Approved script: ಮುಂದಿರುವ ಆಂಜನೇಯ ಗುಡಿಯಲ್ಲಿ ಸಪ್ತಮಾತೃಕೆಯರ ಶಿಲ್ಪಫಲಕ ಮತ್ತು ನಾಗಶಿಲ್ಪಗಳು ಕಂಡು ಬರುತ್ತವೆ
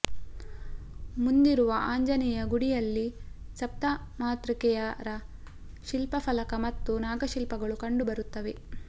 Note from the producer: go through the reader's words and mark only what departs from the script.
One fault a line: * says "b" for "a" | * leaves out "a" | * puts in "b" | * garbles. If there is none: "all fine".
all fine